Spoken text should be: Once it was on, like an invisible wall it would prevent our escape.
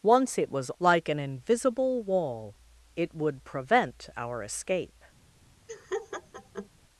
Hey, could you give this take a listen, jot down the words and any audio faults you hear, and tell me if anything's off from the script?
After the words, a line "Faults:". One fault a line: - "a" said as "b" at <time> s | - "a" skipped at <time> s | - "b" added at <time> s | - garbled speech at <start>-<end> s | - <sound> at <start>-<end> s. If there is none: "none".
Once it was like an invisible wall it would prevent our escape.
Faults:
- "on" skipped at 0.7 s
- laugh at 5.7-6.7 s